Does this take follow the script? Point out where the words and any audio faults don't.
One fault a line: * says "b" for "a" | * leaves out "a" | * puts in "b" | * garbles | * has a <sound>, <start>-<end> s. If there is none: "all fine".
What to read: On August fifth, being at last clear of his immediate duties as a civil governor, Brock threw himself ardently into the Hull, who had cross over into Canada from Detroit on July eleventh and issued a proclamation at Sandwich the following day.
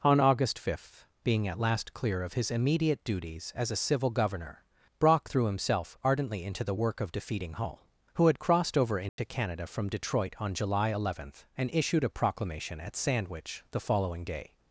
* puts in "work of defeating"
* says "crossed" for "cross"
* has a dropout, 9.1-9.2 s